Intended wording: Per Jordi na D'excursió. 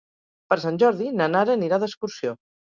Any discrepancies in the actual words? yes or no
yes